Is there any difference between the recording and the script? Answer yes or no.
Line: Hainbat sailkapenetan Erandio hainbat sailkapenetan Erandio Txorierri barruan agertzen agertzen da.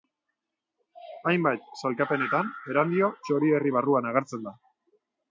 yes